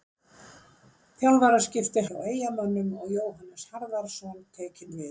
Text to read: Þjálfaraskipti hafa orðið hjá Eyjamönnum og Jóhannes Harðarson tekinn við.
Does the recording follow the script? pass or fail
fail